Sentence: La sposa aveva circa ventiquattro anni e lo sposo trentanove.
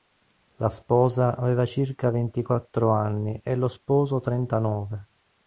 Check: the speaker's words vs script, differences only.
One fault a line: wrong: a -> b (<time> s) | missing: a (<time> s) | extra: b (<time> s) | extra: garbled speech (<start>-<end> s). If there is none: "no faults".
no faults